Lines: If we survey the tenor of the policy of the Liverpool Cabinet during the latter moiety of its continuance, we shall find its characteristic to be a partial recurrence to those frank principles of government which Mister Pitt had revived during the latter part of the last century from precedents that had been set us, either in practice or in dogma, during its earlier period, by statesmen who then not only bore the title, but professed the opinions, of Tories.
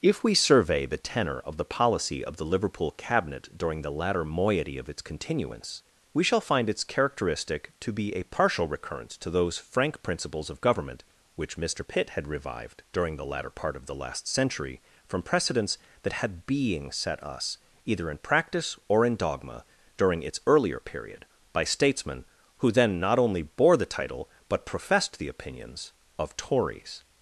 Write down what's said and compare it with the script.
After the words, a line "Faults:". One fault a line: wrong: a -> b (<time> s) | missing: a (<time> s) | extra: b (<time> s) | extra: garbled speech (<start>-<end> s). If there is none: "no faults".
If we survey the tenor of the policy of the Liverpool Cabinet during the latter moiety of its continuance, we shall find its characteristic to be a partial recurrence to those frank principles of government which Mister Pitt had revived during the latter part of the last century from precedents that had being set us, either in practice or in dogma, during its earlier period, by statesmen who then not only bore the title, but professed the opinions, of Tories.
Faults:
wrong: been -> being (16.5 s)